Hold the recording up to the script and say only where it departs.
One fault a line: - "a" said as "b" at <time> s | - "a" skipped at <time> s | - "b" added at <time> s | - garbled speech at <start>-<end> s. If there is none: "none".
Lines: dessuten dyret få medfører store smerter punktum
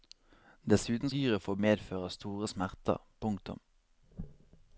none